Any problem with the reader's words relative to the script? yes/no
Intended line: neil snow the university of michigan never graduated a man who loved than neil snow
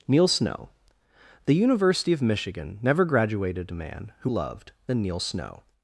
no